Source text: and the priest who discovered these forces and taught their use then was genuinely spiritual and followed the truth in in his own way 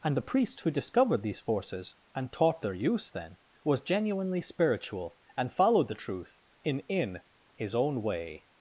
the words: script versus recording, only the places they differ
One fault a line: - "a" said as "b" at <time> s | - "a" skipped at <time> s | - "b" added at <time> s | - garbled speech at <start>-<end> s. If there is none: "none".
none